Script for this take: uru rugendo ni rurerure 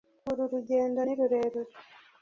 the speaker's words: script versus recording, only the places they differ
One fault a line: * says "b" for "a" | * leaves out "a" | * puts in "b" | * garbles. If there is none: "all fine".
all fine